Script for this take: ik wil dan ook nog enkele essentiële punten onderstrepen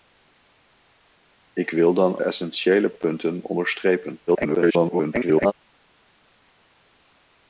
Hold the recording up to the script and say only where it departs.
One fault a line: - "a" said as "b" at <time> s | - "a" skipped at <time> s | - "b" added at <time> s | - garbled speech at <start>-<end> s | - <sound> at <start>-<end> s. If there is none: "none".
- "ook nog enkele" skipped at 2.2 s
- garbled speech at 4.3-5.5 s